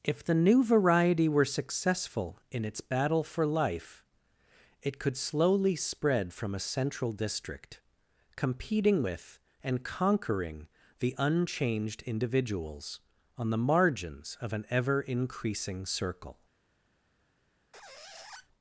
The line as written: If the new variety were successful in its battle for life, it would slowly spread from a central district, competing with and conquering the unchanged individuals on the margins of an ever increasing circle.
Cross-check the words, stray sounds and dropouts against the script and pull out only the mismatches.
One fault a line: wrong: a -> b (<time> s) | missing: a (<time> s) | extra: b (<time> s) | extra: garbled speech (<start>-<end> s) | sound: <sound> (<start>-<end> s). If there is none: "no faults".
wrong: would -> could (5.0 s)
sound: squeak (17.7-18.5 s)